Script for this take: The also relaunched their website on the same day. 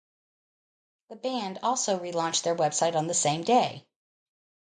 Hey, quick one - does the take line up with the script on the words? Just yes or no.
no